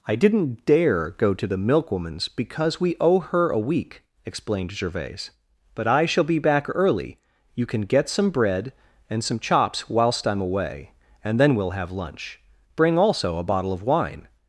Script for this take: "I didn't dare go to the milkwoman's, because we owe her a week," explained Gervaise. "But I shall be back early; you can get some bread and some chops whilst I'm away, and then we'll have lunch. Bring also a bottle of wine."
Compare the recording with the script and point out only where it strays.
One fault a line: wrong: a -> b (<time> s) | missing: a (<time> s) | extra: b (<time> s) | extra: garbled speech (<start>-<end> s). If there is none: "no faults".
no faults